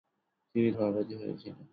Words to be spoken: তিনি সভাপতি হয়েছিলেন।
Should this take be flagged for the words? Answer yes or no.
no